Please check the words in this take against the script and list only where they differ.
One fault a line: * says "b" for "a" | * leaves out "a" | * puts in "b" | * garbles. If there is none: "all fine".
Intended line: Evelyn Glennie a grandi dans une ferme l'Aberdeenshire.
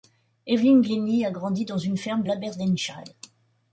all fine